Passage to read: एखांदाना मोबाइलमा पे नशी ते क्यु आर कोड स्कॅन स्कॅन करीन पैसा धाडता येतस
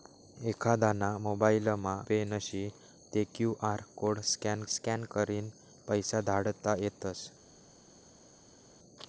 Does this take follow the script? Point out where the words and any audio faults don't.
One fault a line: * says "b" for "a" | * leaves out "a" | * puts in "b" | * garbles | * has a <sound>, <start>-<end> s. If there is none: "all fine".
all fine